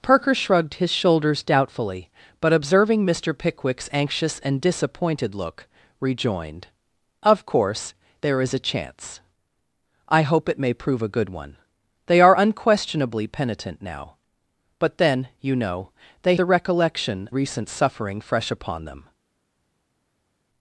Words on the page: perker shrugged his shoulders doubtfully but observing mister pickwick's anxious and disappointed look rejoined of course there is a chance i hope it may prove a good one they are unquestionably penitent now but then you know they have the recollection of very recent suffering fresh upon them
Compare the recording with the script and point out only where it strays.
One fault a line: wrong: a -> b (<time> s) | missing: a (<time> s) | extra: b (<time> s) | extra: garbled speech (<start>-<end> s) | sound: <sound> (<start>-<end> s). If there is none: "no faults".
missing: have (16.4 s)
missing: of very (17.3 s)